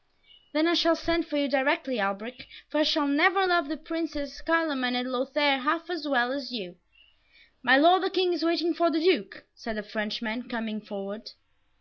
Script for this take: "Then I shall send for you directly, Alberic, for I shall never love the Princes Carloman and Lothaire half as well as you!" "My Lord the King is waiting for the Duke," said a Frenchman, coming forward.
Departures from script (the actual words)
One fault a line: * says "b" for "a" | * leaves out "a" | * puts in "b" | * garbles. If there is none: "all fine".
all fine